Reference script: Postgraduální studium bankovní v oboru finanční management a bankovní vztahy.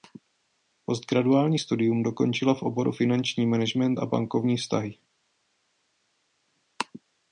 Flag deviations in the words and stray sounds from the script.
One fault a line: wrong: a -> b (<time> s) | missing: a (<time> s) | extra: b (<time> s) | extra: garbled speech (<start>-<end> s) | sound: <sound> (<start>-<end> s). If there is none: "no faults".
wrong: bankovní -> dokončila (2.0 s)